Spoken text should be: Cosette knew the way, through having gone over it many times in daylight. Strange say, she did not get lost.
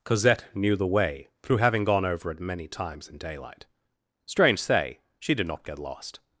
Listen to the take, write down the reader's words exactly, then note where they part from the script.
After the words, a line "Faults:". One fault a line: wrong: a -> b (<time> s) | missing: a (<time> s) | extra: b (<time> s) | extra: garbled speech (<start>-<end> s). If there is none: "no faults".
Cosette knew the way, through having gone over it many times in daylight. Strange say, she did not get lost.
Faults:
no faults